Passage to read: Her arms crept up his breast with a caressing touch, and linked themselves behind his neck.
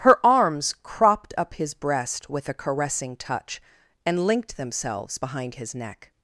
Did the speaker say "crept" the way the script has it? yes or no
no